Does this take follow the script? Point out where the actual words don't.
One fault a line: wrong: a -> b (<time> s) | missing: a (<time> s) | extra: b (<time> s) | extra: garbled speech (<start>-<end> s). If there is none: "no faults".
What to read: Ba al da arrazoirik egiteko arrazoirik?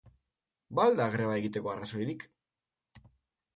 wrong: arrazoirik -> greba (1.2 s)